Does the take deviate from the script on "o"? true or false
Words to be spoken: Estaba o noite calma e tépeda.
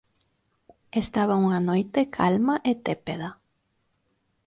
true